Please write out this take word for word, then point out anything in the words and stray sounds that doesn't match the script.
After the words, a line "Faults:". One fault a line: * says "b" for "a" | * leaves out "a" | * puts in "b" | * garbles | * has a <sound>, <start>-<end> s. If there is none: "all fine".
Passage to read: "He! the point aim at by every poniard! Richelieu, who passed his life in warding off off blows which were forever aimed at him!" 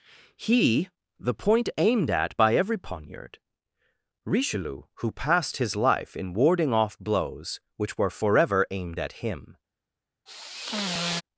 "He! the point aimed at by every poniard! Richelieu, who passed his life in warding off blows which were forever aimed at him!"
Faults:
* says "aimed" for "aim"
* leaves out "off"
* has a sigh, 10.3-11.2 s